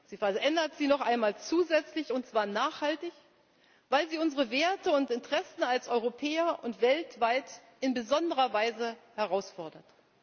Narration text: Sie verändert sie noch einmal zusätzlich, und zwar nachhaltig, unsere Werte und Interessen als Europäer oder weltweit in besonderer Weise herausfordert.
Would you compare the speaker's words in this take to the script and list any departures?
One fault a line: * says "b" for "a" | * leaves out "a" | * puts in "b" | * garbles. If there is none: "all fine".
* puts in "weil sie"
* says "und" for "oder"